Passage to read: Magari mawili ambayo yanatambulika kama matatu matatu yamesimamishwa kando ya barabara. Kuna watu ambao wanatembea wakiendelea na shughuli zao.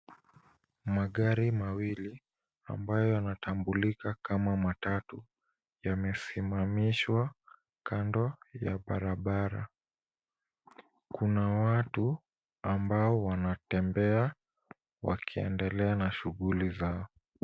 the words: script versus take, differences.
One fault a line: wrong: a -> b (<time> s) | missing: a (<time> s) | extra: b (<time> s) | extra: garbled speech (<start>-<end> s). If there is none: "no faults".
missing: matatu (5.2 s)